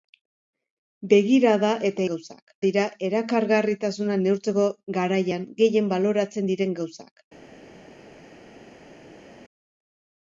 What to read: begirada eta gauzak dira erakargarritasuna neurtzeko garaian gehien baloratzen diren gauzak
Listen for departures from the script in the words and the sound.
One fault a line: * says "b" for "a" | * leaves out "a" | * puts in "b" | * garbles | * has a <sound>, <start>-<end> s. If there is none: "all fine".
all fine